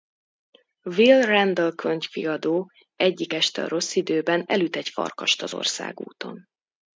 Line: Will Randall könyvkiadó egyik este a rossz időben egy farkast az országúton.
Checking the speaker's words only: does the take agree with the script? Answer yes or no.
no